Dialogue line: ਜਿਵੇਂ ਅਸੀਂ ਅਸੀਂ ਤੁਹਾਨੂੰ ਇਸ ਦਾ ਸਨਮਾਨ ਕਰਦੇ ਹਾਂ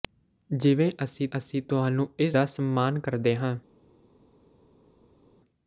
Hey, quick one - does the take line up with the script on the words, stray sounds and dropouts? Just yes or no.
yes